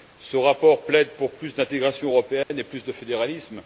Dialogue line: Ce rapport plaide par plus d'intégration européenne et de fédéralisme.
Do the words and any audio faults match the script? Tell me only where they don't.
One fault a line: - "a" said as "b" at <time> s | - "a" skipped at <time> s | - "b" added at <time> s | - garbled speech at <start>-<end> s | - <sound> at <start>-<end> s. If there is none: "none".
- "par" said as "pour" at 1.2 s
- dropout at 2.4-2.5 s
- "plus" added at 2.6 s